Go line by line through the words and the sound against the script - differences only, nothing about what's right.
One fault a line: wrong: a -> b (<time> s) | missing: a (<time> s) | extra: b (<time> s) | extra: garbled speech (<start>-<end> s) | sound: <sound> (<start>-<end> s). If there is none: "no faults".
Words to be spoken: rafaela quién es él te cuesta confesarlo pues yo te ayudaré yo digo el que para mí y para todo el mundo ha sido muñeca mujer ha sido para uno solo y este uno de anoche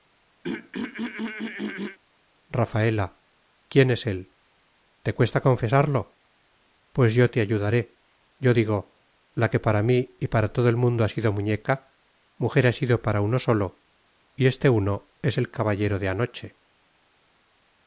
sound: throat clearing (0.4-2.0 s)
wrong: el -> la (9.3 s)
extra: es el caballero (15.2 s)